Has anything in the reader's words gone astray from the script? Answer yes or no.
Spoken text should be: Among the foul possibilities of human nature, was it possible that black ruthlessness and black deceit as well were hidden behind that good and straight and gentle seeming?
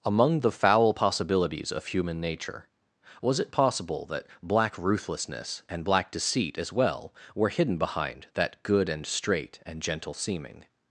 no